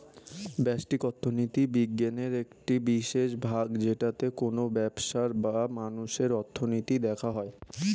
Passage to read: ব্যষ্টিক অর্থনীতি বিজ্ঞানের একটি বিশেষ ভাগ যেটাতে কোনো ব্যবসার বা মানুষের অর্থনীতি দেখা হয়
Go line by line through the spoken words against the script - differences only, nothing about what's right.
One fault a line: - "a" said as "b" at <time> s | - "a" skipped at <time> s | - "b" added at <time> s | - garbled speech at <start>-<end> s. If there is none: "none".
none